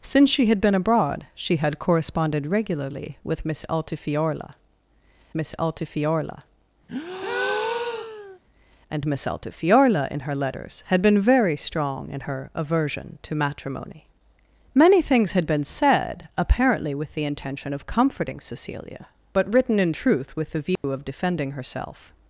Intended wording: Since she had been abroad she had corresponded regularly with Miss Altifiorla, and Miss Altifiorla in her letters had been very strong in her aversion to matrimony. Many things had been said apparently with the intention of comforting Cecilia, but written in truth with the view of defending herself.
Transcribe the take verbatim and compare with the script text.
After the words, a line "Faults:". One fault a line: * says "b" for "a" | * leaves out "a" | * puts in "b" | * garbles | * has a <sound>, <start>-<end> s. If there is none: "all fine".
Since she had been abroad she had corresponded regularly with Miss Altifiorla Miss Altifiorla, and Miss Altifiorla in her letters had been very strong in her aversion to matrimony. Many things had been said apparently with the intention of comforting Cecilia, but written in truth with the view of defending herself.
Faults:
* puts in "Miss Altifiorla"
* has a breath, 6.9-8.4 s
* has a dropout, 20.8-20.8 s